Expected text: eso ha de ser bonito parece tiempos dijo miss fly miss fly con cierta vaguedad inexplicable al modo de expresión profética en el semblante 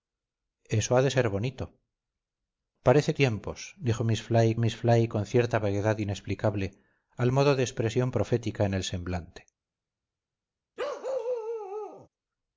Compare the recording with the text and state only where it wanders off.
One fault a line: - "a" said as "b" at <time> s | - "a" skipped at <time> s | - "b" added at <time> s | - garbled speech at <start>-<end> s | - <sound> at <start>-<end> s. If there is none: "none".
- bark at 10.8-12.1 s